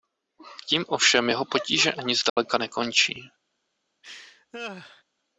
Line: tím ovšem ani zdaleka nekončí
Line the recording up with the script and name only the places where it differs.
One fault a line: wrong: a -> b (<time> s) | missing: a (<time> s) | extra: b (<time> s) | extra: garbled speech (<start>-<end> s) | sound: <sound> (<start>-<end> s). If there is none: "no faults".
extra: jeho potíže (1.3 s)
sound: dropout (2.3-2.4 s)
sound: laugh (4.0-5.0 s)